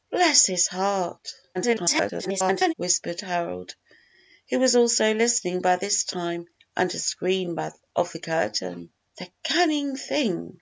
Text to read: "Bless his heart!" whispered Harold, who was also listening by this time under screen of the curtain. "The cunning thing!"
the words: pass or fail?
fail